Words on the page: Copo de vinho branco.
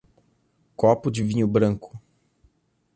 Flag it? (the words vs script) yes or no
no